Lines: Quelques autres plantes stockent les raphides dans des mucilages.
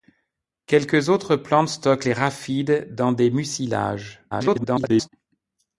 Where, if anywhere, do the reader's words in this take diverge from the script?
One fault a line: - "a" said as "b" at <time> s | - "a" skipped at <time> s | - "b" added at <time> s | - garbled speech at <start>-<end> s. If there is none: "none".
- garbled speech at 4.3-5.1 s